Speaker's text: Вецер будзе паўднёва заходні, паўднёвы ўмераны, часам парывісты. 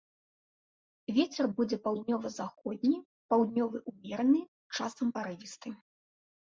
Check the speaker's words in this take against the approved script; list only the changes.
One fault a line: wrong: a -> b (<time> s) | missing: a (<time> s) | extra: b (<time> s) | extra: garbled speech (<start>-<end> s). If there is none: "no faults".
no faults